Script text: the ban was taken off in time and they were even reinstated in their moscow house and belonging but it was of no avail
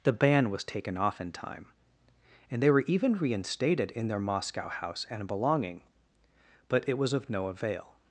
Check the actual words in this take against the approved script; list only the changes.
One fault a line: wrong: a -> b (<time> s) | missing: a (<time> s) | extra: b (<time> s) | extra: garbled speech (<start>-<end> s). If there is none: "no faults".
no faults